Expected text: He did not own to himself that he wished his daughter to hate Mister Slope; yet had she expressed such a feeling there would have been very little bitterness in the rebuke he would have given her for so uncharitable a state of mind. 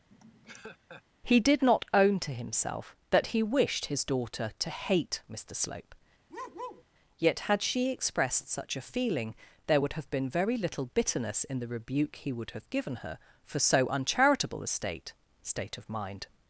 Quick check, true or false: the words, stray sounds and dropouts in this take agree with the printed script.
false